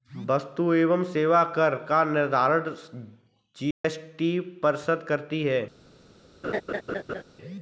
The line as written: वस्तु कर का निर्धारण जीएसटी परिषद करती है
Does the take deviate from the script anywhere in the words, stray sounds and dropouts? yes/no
yes